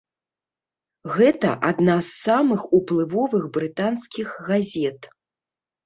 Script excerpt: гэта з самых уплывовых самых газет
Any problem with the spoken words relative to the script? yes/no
yes